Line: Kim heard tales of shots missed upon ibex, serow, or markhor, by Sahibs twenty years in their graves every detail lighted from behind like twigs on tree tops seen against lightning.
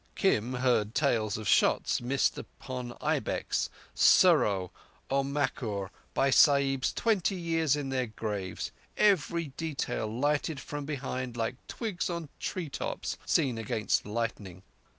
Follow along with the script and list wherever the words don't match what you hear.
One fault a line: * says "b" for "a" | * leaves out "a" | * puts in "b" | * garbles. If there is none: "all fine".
all fine